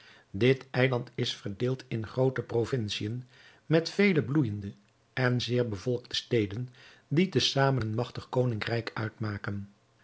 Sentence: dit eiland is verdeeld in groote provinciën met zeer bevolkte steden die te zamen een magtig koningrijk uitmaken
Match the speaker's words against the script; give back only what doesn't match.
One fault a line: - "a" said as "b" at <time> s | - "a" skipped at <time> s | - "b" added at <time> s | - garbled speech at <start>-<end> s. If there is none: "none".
- "vele bloeijende en" added at 3.9 s